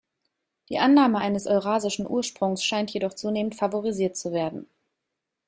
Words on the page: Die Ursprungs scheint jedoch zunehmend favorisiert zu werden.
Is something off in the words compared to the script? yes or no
yes